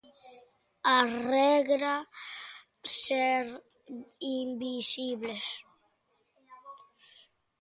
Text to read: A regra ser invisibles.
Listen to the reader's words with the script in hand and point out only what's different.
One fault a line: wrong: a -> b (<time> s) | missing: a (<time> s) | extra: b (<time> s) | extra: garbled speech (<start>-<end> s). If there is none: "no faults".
no faults